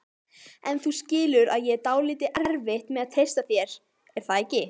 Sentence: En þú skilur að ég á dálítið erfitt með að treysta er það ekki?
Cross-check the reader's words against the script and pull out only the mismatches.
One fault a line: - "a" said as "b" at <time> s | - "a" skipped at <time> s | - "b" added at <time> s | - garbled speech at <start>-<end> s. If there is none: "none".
- "þér" added at 3.5 s